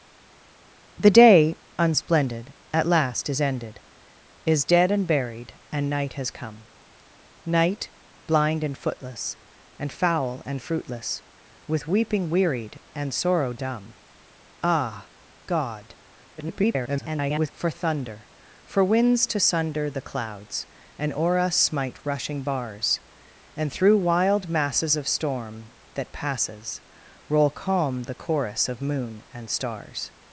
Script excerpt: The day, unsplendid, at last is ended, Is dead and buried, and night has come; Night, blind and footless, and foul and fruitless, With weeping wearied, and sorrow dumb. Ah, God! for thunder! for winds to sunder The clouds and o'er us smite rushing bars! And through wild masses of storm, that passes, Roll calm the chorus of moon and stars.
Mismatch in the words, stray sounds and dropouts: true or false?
true